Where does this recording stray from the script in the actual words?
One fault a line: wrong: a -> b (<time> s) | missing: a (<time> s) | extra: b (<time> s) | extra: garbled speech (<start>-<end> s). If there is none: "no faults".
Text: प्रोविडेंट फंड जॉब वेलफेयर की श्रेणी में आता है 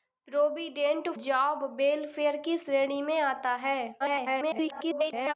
missing: फंड (1.1 s)
extra: garbled speech (4.0-5.3 s)